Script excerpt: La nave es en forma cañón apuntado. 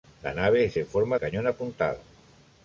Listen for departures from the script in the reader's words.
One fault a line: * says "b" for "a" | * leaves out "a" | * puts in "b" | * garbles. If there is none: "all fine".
all fine